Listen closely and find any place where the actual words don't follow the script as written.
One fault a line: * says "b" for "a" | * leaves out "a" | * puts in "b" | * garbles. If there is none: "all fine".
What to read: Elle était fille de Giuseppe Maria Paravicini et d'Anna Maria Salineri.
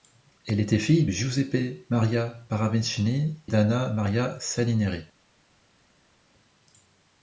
* leaves out "de"
* leaves out "et"